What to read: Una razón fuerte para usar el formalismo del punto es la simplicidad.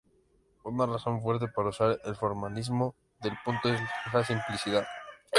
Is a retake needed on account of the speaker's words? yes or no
no